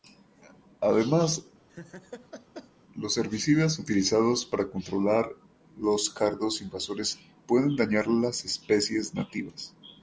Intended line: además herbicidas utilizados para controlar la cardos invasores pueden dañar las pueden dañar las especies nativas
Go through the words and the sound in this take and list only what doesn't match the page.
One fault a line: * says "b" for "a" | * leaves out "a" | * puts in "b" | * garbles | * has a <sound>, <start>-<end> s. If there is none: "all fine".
* has a laugh, 1.7-2.7 s
* puts in "los"
* says "los" for "la"
* leaves out "pueden dañar las"